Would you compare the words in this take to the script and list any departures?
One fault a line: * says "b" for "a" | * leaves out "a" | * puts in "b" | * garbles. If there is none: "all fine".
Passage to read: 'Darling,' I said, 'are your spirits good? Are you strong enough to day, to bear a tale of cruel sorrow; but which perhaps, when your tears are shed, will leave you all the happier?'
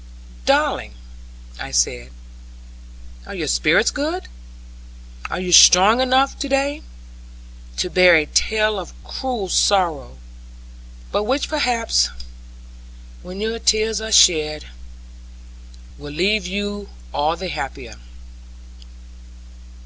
all fine